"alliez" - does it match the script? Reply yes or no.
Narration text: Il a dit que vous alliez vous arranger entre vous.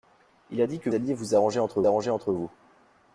no